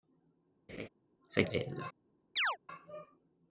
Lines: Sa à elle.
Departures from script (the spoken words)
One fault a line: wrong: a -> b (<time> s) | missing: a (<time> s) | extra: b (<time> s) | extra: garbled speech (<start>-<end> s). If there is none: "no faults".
no faults